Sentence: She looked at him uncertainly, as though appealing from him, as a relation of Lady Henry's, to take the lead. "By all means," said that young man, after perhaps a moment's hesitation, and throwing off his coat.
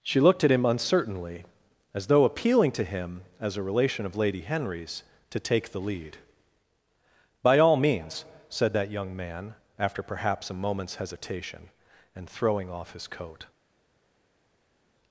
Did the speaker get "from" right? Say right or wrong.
wrong